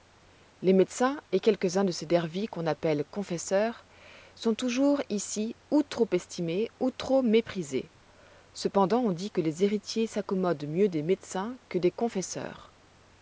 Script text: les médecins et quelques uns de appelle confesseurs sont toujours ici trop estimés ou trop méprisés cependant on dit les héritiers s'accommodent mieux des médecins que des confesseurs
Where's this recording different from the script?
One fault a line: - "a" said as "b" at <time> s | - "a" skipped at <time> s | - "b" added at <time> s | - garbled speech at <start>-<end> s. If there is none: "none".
- "ces dervis qu'on" added at 1.9 s
- "ou" added at 5.7 s
- "que" added at 9.3 s